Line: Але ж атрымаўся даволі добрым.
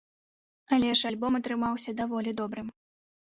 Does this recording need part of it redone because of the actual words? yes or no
yes